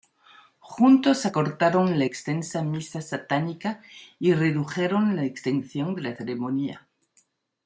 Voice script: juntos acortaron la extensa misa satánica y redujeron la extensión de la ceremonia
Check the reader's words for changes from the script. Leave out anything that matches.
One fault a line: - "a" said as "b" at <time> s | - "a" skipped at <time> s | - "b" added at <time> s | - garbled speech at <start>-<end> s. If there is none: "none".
none